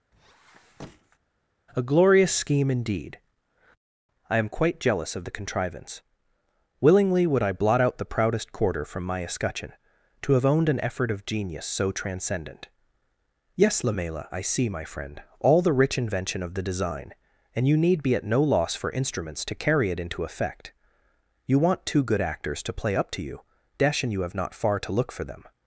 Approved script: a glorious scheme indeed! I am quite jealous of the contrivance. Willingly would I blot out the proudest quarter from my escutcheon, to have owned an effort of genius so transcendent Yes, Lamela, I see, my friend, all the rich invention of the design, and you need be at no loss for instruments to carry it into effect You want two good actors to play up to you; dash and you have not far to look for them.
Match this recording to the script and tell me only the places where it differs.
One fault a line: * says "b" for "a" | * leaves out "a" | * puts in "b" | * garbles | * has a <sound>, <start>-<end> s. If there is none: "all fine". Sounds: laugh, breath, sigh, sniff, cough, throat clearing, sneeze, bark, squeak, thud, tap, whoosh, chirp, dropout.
* has a squeak, 0.1-1.2 s